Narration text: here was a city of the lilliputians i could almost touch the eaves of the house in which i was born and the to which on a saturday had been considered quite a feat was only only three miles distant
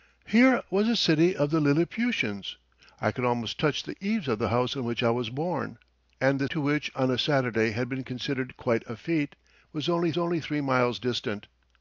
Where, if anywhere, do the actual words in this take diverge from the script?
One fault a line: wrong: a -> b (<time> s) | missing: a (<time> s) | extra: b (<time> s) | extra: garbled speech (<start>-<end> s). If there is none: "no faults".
no faults